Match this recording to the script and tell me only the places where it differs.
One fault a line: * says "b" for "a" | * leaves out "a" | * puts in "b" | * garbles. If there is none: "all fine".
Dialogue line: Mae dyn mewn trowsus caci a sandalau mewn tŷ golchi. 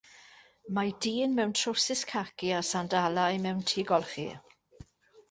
all fine